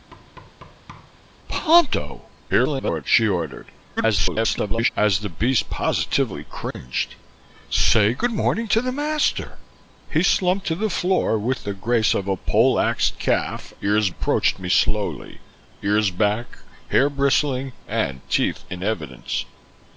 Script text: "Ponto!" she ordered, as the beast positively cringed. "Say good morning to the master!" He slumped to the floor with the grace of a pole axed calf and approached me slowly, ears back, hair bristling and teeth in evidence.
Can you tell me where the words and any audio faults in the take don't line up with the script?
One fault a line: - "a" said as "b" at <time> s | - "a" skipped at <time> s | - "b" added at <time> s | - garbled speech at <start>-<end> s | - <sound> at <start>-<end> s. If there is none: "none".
- thud at 0.1-1.2 s
- garbled speech at 2.5-3.0 s
- garbled speech at 4.0-4.9 s
- dropout at 6.7-6.7 s
- "and" said as "ears" at 13.8 s